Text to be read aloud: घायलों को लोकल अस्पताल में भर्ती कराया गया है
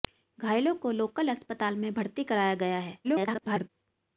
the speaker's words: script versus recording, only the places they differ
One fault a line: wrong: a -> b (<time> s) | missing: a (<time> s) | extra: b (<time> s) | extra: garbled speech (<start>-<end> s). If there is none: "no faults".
extra: garbled speech (3.0-3.7 s)